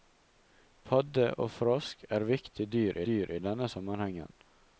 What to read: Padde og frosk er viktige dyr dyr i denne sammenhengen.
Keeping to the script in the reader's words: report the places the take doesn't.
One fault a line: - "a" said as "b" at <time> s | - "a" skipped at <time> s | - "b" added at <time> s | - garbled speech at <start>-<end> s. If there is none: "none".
none